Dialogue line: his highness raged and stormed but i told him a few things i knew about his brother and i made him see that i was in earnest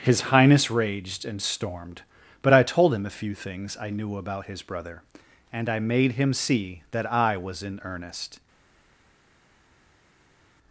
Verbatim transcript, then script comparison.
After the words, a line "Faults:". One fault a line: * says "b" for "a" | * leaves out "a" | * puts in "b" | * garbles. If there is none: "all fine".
his highness raged and stormed but i told him a few things i knew about his brother and i made him see that i was in earnest
Faults:
all fine